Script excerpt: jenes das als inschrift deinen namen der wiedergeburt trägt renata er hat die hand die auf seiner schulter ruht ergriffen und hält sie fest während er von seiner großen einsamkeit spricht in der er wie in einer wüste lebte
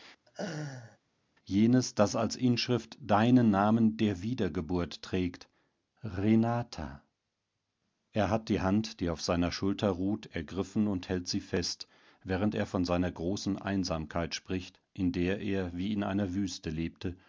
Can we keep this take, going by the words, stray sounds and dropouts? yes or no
no